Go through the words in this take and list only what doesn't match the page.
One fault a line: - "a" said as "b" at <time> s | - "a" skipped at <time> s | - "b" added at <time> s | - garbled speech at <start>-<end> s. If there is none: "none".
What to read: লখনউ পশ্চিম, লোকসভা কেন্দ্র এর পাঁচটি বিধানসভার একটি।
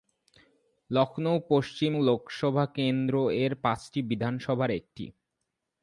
none